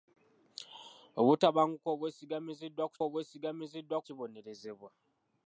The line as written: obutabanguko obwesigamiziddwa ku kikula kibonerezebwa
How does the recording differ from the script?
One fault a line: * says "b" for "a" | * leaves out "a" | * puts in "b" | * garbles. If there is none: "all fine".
* says "obwesigamiziddwa" for "kikula"